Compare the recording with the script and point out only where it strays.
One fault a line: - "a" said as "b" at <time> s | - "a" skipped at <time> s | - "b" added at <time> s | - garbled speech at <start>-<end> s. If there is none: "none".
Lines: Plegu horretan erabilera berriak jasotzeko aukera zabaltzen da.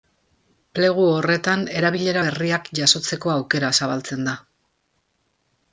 none